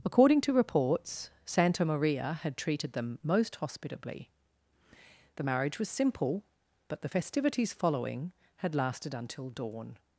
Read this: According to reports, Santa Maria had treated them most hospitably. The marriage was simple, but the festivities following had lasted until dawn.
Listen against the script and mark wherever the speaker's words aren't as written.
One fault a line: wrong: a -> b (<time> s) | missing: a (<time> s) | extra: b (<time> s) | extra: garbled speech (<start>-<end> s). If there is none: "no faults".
no faults